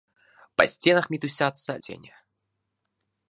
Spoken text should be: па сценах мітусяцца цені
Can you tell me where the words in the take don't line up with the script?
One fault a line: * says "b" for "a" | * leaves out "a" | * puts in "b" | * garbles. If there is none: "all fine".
all fine